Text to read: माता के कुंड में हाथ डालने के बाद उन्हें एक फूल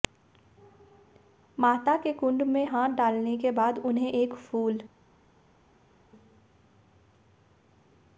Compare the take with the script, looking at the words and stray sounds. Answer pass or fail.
pass